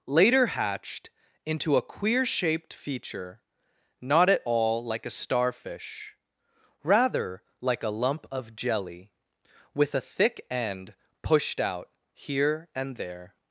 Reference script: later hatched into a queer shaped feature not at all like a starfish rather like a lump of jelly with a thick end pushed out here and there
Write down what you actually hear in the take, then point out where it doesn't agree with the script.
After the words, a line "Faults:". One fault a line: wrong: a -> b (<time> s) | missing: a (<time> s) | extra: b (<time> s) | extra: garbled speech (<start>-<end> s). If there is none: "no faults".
later hatched into a queer shaped feature not at all like a starfish rather like a lump of jelly with a thick end pushed out here and there
Faults:
no faults